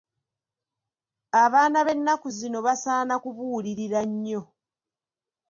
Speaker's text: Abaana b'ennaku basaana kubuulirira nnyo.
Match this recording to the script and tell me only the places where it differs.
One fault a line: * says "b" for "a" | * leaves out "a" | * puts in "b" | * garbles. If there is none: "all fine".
* puts in "zino"